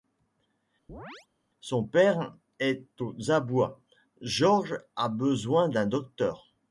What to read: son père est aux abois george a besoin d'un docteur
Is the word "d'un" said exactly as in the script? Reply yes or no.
yes